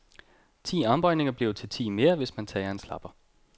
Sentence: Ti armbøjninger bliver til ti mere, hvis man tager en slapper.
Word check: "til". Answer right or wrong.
right